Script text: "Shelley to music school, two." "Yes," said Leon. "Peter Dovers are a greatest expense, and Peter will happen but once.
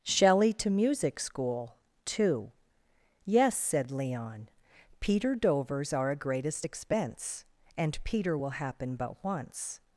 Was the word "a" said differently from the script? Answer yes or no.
no